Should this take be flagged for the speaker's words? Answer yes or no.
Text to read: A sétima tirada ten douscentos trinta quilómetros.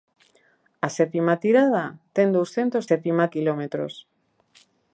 yes